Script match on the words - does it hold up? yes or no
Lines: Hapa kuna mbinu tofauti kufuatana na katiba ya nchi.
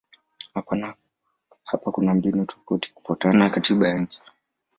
yes